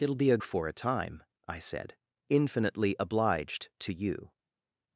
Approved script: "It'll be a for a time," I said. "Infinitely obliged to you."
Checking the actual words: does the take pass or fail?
pass